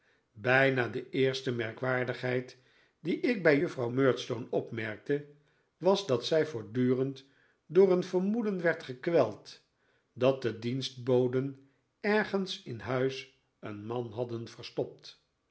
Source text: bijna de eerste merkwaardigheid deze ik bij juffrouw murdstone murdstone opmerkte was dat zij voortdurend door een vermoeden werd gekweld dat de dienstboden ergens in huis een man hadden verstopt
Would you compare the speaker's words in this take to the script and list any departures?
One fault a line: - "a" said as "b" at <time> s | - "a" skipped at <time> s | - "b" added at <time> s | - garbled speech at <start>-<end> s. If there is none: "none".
- "deze" said as "die" at 3.0 s
- "murdstone" skipped at 4.5 s